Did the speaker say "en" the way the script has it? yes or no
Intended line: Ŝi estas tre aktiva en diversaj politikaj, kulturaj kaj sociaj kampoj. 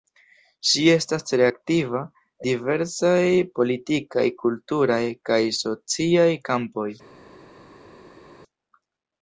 no